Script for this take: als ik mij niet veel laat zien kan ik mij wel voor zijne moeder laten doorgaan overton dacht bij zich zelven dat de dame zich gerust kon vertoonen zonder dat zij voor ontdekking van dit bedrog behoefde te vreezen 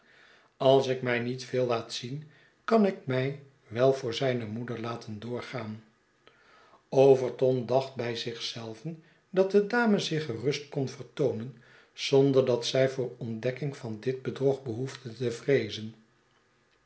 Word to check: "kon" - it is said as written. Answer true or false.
true